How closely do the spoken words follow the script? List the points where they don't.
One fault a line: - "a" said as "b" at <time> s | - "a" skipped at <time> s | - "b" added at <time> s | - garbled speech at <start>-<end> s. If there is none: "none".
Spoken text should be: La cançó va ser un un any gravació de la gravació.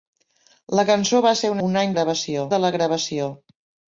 none